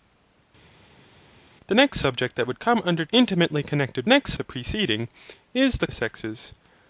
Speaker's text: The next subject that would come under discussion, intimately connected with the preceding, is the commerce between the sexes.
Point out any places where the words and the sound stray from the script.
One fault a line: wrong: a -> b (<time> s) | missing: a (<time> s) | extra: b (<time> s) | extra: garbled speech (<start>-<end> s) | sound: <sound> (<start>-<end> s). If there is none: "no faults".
missing: discussion (3.0 s)
wrong: with -> next (4.1 s)
missing: commerce between (5.9 s)